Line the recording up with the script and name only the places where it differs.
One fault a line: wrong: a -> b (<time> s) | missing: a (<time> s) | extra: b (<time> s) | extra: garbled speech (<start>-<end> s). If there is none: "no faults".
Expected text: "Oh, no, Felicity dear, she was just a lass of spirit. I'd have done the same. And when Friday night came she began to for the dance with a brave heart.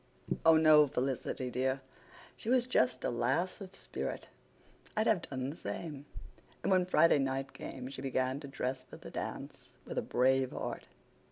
extra: dress (8.5 s)